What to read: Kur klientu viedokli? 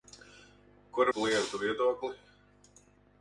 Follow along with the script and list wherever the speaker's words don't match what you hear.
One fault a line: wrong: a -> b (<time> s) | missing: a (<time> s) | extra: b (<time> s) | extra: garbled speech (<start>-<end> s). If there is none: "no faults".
no faults